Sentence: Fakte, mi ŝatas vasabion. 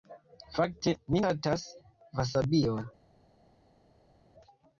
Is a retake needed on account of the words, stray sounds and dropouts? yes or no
no